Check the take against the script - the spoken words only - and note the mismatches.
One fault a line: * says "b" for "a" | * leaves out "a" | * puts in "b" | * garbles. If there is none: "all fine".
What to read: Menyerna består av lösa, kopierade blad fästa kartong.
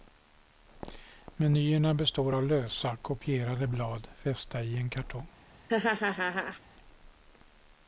* puts in "i en"